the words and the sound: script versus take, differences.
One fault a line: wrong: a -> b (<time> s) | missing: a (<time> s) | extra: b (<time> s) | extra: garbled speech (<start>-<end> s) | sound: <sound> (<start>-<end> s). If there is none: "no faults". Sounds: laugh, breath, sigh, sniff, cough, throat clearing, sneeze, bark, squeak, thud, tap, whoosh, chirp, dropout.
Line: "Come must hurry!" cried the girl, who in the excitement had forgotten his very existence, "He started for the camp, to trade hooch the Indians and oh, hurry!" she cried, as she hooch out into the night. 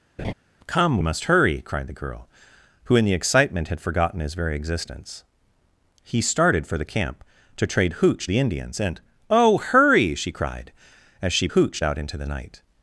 sound: laugh (0.2-0.3 s)